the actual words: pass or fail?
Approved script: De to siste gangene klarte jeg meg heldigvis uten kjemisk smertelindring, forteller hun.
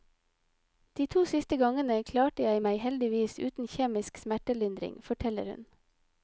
pass